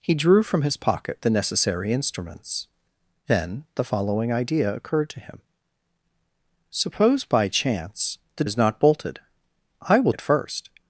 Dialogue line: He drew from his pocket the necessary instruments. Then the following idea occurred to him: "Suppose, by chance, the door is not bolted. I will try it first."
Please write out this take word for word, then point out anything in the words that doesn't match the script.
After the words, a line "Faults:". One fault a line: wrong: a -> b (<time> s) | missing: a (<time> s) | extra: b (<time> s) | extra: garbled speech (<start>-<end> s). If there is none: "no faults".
He drew from his pocket the necessary instruments. Then the following idea occurred to him: "Suppose, by chance, the is not bolted. I will it first."
Faults:
missing: door (8.4 s)
missing: try (10.1 s)